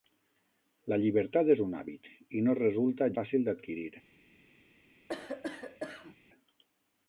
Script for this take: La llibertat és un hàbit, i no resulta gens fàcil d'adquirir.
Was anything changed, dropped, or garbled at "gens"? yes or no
yes